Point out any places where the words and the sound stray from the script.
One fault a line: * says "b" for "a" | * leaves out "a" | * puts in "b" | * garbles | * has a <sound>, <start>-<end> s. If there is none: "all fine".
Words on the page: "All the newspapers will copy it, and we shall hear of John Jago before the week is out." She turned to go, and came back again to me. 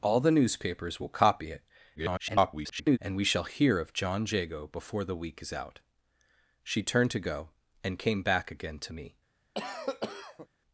* garbles
* has a cough, 9.5-10.5 s